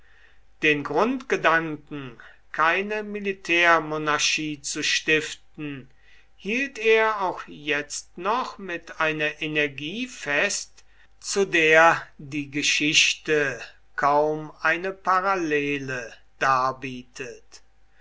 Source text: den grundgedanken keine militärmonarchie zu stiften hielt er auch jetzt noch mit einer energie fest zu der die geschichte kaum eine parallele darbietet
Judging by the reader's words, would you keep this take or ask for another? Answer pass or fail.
pass